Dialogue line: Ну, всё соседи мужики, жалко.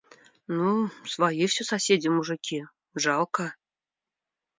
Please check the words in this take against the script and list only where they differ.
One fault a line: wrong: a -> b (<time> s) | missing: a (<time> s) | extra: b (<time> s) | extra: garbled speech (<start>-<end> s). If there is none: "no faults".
extra: свои (1.1 s)